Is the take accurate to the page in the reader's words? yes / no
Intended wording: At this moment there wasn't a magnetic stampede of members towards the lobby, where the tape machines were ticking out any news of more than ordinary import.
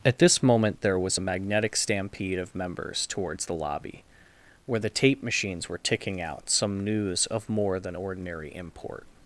no